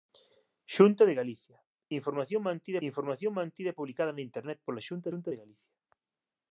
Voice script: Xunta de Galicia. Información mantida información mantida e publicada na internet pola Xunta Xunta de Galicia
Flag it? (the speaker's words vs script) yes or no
no